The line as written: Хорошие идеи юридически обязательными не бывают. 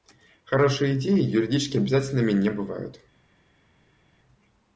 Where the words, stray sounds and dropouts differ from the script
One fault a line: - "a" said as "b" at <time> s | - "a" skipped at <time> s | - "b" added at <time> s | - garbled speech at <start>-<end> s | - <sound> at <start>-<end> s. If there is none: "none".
none